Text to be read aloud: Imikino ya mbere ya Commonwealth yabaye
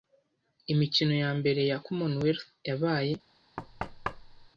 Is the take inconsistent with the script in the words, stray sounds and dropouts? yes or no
yes